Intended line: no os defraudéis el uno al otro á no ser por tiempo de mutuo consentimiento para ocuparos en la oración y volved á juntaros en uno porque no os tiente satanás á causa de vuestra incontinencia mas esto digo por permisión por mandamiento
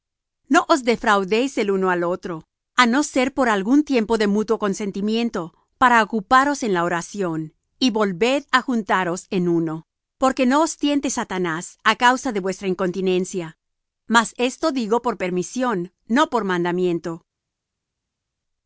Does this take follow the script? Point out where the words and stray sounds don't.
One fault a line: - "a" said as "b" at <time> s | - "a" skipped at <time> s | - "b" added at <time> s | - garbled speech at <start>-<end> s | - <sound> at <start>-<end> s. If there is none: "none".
- "algún" added at 3.5 s
- "no" added at 16.1 s